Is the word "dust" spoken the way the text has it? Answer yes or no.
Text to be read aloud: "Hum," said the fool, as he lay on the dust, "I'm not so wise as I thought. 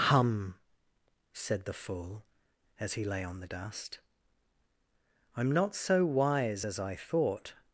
yes